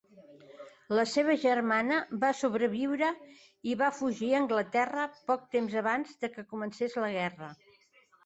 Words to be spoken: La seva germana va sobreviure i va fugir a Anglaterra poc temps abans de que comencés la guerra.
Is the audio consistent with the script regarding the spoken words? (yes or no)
yes